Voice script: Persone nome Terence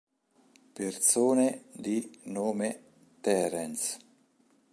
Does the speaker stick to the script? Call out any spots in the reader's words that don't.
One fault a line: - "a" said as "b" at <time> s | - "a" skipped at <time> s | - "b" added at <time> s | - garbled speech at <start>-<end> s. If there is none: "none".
- "di" added at 1.7 s